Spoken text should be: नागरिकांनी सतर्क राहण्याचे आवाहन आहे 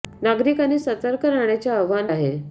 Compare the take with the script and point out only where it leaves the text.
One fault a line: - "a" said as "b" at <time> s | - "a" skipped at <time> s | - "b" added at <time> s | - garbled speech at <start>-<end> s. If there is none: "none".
none